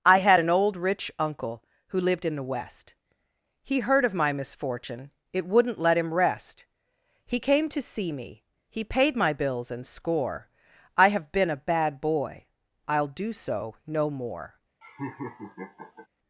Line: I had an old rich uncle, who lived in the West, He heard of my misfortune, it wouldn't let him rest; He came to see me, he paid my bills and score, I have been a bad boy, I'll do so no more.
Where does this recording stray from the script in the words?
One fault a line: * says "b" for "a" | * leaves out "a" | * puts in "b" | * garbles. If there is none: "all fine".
all fine